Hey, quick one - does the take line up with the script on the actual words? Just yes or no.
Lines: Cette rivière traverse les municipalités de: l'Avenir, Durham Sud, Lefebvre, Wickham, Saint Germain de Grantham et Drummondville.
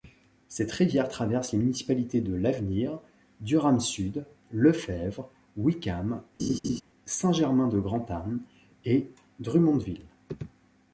yes